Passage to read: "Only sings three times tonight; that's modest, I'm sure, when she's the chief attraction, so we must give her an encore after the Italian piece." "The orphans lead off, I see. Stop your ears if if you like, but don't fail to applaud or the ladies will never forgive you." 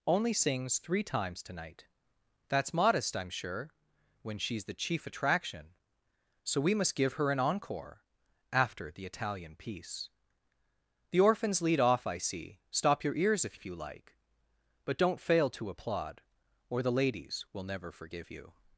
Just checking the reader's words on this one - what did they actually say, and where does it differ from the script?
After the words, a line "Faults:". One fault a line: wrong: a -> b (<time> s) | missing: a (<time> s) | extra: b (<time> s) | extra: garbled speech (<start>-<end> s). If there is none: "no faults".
"Only sings three times tonight; that's modest, I'm sure, when she's the chief attraction, so we must give her an encore after the Italian piece." "The orphans lead off, I see. Stop your ears if if you like, but don't fail to applaud or the ladies will never forgive you."
Faults:
no faults